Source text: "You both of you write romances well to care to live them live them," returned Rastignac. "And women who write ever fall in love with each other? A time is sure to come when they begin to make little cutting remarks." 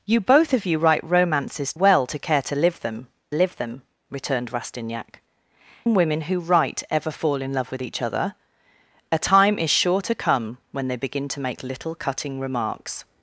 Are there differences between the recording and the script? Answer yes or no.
no